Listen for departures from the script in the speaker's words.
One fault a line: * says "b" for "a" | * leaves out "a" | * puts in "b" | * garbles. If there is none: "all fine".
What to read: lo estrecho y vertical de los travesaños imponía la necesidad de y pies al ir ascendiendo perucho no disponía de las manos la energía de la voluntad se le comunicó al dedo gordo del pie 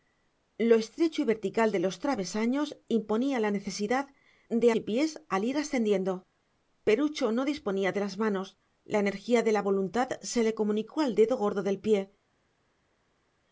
all fine